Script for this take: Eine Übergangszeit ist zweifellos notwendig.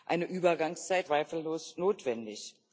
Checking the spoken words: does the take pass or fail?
fail